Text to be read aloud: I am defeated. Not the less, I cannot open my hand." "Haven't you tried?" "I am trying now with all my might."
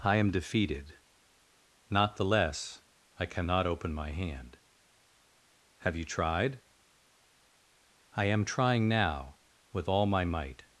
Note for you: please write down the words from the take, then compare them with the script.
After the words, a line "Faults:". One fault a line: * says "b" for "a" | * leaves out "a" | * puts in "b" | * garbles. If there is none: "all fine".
I am defeated. Not the less, I cannot open my hand." "Have you tried?" "I am trying now with all my might."
Faults:
* says "Have" for "Haven't"